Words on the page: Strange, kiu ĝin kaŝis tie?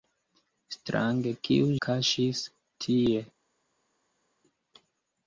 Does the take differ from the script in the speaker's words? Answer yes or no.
yes